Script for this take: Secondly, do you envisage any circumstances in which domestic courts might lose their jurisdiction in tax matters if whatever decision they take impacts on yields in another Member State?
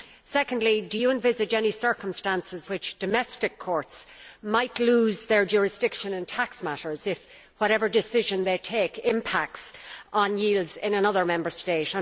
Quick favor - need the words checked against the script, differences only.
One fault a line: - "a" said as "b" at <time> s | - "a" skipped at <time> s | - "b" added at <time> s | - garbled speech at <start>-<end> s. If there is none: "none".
- "in" skipped at 2.7 s